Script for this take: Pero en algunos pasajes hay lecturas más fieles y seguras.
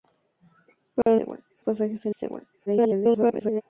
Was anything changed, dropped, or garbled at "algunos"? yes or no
yes